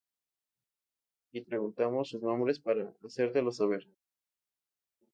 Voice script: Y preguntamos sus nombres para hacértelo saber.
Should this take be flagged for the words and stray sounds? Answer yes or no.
no